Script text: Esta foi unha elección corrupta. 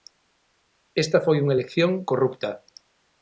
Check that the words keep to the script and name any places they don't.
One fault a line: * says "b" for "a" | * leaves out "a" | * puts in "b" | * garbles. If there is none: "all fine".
all fine